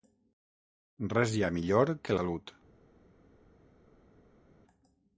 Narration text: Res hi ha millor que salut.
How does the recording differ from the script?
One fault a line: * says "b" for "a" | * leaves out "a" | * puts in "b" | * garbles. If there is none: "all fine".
all fine